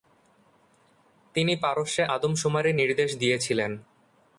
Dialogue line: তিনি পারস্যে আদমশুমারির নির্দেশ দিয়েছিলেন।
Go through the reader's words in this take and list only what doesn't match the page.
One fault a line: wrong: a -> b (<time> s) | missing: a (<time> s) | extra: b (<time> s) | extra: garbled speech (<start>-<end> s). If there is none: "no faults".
no faults